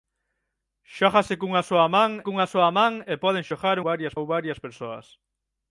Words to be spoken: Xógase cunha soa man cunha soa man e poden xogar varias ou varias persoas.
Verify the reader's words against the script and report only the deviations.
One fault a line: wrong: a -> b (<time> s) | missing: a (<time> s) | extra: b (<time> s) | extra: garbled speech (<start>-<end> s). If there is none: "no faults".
no faults